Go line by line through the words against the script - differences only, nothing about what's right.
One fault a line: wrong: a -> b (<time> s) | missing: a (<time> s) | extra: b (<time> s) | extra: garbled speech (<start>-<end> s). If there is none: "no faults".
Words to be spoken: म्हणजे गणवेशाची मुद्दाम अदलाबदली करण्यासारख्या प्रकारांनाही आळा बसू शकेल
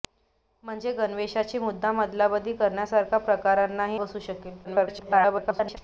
missing: आळा (4.0 s)
extra: garbled speech (4.6-5.8 s)